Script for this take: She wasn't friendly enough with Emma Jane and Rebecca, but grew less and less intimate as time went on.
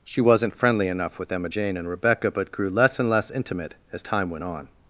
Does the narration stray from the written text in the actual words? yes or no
no